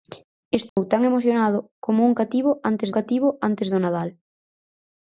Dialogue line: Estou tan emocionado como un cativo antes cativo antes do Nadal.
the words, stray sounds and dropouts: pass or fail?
fail